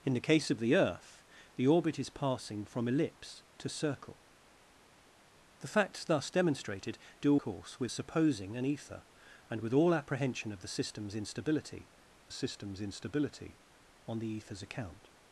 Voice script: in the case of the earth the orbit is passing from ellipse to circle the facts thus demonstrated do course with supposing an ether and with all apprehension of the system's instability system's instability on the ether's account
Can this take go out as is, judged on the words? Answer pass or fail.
pass